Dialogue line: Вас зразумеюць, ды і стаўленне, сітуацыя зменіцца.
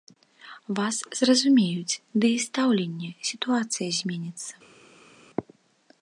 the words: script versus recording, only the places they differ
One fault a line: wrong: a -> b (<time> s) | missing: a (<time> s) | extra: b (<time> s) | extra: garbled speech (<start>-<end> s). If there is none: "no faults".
no faults